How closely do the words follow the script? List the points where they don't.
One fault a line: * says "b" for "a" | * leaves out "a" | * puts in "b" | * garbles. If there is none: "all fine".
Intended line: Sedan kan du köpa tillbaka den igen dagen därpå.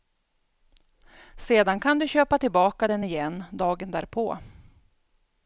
all fine